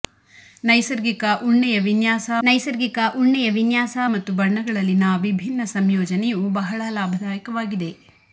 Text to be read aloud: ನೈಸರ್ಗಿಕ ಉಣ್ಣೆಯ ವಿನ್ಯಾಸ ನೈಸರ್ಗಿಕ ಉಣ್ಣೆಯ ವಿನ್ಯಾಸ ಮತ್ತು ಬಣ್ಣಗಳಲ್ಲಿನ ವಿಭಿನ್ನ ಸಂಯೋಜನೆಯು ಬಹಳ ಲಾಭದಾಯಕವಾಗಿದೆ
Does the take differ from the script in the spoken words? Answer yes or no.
no